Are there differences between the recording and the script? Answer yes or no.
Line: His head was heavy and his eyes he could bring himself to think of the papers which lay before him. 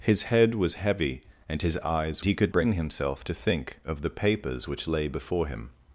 no